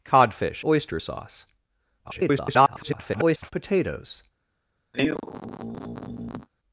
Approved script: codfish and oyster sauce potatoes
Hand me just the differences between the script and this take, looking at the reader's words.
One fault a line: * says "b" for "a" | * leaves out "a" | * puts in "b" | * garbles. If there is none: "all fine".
* leaves out "and"
* garbles